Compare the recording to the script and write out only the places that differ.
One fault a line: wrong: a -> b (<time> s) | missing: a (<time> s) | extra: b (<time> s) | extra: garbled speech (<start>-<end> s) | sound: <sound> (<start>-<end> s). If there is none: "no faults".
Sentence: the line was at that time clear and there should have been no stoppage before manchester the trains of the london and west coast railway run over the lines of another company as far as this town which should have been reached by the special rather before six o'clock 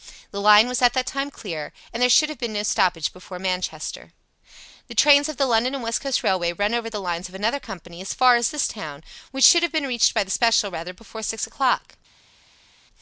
no faults